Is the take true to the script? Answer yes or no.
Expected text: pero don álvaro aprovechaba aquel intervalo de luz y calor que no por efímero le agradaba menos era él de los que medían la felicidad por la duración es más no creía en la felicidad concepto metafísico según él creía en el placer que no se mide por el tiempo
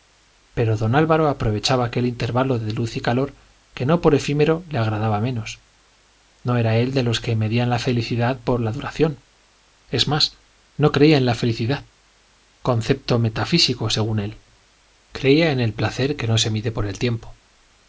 no